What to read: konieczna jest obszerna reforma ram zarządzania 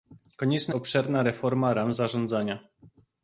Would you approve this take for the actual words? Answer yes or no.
no